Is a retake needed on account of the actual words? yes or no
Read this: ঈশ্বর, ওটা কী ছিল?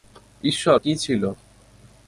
yes